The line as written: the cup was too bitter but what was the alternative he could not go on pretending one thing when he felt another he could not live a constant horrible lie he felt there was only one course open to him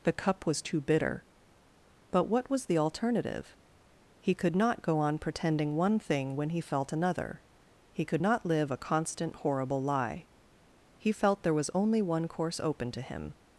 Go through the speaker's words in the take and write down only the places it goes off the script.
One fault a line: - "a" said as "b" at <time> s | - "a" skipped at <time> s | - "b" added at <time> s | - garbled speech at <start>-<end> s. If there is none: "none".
none